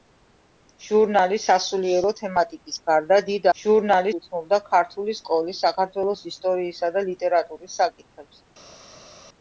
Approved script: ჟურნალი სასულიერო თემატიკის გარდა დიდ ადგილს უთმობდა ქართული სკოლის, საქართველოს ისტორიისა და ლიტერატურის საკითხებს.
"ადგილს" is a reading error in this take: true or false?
true